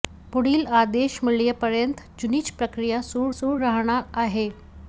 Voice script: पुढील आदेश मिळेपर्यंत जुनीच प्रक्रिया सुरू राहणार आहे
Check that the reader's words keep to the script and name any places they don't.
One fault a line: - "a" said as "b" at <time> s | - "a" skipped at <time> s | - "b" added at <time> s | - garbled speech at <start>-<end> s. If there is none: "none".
- "सुरू" added at 3.3 s